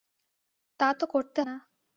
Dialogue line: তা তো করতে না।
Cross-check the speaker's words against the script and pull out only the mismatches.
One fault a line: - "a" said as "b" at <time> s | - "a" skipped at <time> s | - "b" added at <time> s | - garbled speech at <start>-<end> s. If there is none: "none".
none